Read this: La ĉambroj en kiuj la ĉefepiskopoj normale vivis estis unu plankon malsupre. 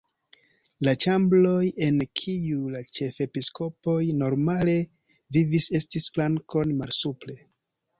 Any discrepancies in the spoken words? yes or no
yes